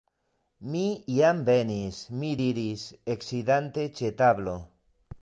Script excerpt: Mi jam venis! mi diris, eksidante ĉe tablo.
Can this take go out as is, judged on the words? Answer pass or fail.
pass